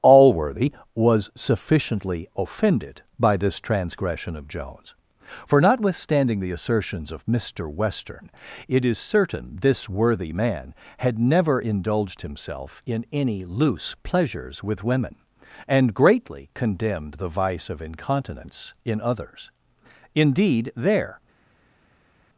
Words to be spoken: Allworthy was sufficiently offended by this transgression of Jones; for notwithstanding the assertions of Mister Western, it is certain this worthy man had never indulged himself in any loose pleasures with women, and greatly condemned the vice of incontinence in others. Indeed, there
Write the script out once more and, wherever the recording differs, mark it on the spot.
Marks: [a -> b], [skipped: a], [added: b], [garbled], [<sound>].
Allworthy was sufficiently offended by this transgression of Jones; for notwithstanding the assertions of Mister Western, it is certain this worthy man had never indulged himself in any loose pleasures with women, and greatly condemned the vice of incontinence in others. Indeed, there